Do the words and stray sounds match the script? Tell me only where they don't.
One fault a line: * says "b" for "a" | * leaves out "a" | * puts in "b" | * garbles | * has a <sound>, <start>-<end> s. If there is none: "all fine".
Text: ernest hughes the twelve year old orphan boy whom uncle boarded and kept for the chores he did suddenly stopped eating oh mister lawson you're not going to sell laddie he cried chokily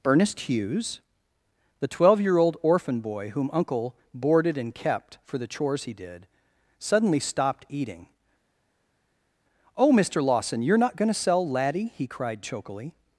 all fine